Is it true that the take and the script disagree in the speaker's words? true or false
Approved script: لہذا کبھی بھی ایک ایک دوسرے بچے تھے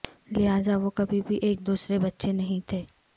true